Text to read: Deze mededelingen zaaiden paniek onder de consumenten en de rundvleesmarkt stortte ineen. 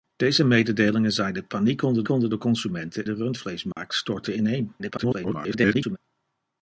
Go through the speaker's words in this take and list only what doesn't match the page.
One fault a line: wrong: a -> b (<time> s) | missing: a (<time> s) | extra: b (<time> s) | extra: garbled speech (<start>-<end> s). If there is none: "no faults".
extra: onder (2.1 s)
missing: en (3.1 s)
extra: garbled speech (4.8-6.0 s)